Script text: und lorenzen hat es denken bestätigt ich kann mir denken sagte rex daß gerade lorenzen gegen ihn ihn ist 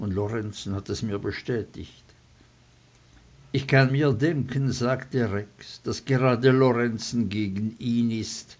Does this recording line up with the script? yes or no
no